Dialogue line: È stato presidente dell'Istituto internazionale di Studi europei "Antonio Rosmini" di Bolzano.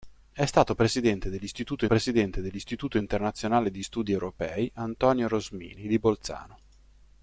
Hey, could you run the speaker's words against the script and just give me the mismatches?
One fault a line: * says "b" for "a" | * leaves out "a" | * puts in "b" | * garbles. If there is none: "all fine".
* puts in "presidente dell'Istituto"